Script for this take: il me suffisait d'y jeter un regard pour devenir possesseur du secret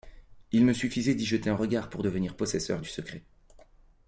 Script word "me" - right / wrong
right